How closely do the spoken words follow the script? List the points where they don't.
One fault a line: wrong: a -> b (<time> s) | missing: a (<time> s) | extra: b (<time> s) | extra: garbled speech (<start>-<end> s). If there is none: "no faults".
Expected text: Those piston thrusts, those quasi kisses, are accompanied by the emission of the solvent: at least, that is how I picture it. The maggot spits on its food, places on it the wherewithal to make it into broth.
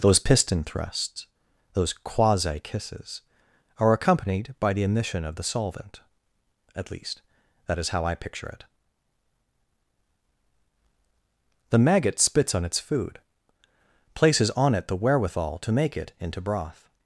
no faults